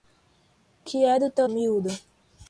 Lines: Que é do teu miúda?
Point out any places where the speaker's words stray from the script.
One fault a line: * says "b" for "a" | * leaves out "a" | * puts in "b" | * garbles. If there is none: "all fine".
all fine